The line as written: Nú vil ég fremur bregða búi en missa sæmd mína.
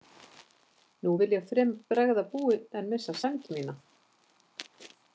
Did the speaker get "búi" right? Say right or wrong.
right